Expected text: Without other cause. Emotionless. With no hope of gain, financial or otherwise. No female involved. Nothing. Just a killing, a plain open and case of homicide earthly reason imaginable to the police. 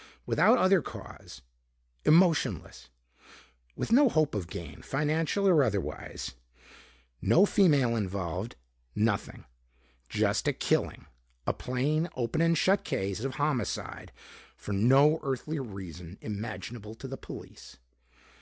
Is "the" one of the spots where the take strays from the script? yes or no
no